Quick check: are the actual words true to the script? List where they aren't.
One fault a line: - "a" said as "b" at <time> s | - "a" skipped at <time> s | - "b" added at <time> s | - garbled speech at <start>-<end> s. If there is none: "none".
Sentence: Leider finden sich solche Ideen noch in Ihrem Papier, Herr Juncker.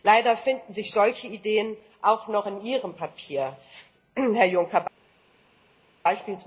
- "auch" added at 2.0 s